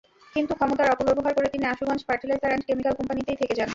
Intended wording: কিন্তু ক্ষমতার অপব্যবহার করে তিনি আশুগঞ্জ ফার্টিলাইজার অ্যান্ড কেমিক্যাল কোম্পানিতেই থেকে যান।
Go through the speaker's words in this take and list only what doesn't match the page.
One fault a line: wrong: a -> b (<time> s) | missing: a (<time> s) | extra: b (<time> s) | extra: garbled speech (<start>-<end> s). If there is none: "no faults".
no faults